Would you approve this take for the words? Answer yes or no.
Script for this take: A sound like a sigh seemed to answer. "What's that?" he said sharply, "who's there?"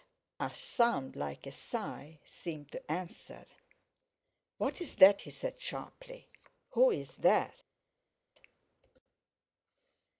yes